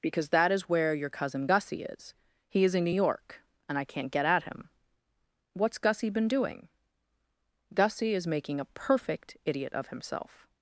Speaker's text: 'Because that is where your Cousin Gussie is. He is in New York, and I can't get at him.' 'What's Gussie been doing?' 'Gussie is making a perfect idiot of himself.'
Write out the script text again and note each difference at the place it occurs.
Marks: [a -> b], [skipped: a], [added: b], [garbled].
'Because that is where your Cousin Gussie is. He is in New York, and I can't get at him.' 'What's Gussie been doing?' 'Gussie is making a perfect idiot of himself.'